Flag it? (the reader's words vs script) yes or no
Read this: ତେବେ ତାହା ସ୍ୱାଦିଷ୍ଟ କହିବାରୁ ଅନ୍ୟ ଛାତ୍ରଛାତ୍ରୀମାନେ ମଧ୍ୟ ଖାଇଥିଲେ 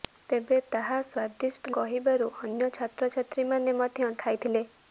no